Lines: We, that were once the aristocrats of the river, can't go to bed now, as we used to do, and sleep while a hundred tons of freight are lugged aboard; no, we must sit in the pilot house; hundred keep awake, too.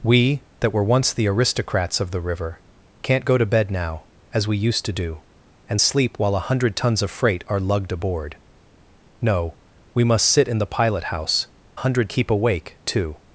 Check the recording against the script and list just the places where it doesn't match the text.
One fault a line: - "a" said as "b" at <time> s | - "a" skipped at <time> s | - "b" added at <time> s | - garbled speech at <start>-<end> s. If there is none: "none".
none